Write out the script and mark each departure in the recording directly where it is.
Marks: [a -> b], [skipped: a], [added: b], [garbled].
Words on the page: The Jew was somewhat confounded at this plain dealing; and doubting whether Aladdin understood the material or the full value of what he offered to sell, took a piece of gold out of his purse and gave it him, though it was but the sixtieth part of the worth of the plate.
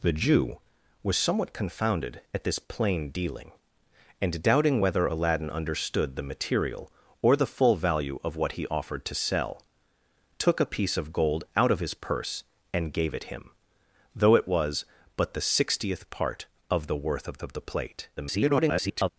The Jew was somewhat confounded at this plain dealing; and doubting whether Aladdin understood the material or the full value of what he offered to sell, took a piece of gold out of his purse and gave it him, though it was but the sixtieth part of the worth of [added: of] the plate. [garbled]